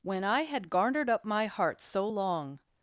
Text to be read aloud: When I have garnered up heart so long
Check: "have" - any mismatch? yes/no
yes